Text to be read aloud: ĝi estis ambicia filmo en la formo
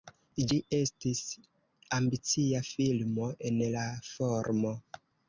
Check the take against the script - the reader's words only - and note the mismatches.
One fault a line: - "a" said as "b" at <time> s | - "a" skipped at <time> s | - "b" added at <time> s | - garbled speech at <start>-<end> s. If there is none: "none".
none